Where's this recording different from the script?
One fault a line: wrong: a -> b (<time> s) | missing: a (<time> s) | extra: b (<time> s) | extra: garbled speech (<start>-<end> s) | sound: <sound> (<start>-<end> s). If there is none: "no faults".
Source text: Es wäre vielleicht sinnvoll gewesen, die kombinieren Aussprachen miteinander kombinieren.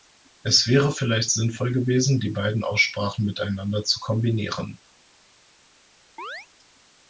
wrong: kombinieren -> beiden (2.3 s)
extra: zu (3.8 s)
sound: chirp (6.2-6.5 s)